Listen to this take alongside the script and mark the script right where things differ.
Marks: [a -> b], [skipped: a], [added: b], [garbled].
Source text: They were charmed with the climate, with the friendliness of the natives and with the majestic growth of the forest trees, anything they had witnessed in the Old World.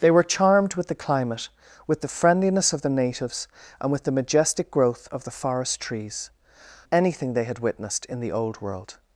They were charmed with the climate, with the friendliness of the natives and with the majestic growth of the forest trees, anything they had witnessed in the Old World.